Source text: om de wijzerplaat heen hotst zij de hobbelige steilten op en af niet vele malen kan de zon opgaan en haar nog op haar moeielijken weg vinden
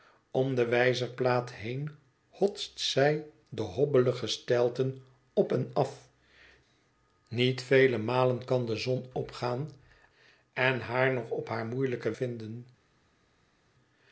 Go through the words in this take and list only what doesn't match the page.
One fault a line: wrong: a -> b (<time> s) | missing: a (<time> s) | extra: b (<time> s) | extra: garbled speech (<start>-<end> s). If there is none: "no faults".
missing: weg (12.1 s)